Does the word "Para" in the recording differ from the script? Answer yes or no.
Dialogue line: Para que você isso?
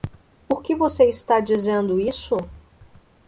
yes